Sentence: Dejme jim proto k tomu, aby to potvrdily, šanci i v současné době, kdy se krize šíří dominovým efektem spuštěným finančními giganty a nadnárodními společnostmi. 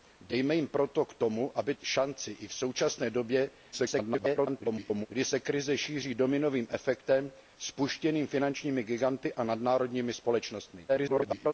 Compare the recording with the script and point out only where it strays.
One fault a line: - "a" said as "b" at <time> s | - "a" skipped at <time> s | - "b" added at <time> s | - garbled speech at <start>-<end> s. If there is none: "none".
- "to potvrdily" skipped at 1.8 s
- garbled speech at 3.7-5.1 s
- garbled speech at 10.9-11.5 s